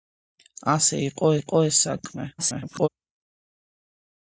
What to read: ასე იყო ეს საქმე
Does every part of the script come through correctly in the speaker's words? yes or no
no